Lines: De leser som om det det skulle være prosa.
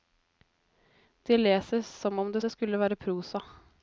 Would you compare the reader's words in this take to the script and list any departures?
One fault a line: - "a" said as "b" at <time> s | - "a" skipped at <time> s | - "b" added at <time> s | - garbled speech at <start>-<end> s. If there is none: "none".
none